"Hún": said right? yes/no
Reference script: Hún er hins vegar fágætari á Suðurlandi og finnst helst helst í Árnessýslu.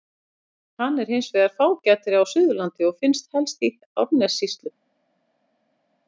no